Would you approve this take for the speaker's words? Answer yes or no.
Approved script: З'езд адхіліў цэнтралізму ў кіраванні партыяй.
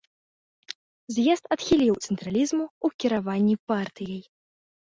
yes